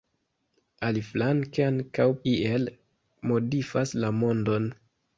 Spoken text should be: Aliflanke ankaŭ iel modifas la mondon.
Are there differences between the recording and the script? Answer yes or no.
no